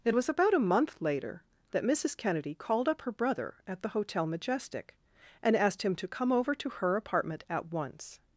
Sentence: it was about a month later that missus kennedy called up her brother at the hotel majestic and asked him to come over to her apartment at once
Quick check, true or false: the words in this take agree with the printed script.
true